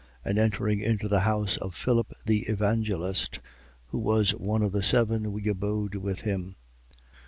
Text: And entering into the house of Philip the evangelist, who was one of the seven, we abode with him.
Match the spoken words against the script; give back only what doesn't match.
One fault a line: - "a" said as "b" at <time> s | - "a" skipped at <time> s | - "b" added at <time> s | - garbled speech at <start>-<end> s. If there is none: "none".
none